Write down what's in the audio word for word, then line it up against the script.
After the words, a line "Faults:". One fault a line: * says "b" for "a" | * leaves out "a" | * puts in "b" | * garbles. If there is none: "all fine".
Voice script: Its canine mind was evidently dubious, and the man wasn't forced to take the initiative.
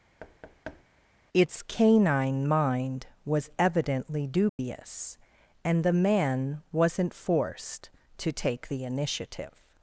Its canine mind was evidently dubious, and the man wasn't forced to take the initiative.
Faults:
all fine